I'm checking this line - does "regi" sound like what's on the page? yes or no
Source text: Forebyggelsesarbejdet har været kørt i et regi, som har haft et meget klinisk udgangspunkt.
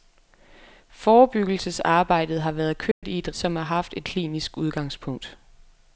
no